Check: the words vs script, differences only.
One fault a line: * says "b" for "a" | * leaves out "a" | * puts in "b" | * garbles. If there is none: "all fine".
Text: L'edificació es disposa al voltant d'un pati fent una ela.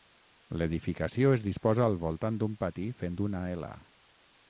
all fine